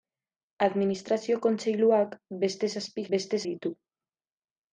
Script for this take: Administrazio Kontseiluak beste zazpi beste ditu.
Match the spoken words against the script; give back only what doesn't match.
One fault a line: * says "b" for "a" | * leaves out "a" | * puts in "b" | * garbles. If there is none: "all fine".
all fine